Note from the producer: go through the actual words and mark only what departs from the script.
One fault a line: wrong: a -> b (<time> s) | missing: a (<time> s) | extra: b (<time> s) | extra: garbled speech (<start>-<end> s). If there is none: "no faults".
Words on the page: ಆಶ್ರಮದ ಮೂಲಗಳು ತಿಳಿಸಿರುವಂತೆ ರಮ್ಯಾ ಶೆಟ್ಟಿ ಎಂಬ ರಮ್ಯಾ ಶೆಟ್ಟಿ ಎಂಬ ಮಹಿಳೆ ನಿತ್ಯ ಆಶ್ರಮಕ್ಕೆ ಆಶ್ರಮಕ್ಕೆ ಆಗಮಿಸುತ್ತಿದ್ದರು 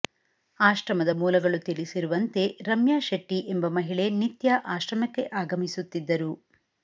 missing: ರಮ್ಯಾ ಶೆಟ್ಟಿ ಎಂಬ (3.7 s)
missing: ಆಶ್ರಮಕ್ಕೆ (5.2 s)